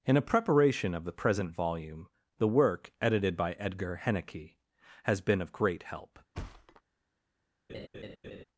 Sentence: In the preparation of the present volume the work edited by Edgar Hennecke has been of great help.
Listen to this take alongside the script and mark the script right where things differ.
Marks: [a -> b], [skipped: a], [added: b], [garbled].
In [the -> a] preparation of the present volume the work edited by Edgar Hennecke has been of great help.